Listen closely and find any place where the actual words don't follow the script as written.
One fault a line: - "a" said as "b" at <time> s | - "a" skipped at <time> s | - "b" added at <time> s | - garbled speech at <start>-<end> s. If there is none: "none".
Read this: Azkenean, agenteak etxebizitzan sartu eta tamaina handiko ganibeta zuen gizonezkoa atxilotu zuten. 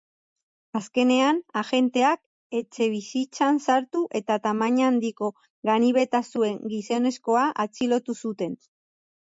none